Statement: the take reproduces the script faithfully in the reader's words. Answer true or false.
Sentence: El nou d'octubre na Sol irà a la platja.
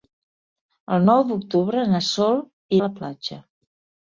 false